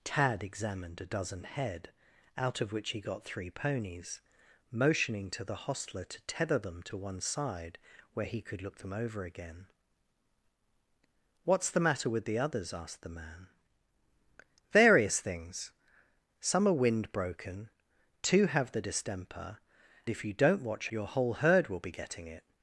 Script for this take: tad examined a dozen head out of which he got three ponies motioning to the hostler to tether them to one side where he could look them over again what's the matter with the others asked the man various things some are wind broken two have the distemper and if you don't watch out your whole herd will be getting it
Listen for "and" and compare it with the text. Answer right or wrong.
wrong